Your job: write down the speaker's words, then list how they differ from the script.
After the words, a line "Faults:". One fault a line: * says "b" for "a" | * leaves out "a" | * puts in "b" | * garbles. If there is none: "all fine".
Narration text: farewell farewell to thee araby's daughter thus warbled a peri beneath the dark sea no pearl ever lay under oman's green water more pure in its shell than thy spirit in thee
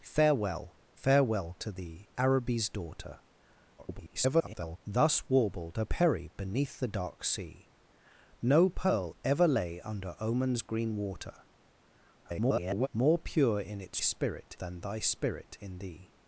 farewell farewell to thee araby's daughter [garbled] thus warbled a peri beneath the dark sea no pearl ever lay under oman's green water [garbled] more pure in its spirit than thy spirit in thee
Faults:
* garbles
* garbles
* says "spirit" for "shell"